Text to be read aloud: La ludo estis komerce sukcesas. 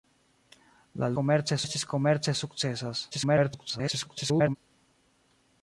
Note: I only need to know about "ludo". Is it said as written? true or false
false